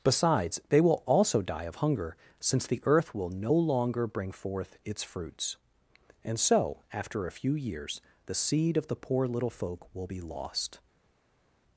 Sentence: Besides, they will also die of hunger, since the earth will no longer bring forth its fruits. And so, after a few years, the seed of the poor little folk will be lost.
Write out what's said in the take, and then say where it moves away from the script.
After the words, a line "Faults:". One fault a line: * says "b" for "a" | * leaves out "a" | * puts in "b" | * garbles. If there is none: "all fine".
Besides, they will also die of hunger, since the earth will no longer bring forth its fruits. And so, after a few years, the seed of the poor little folk will be lost.
Faults:
all fine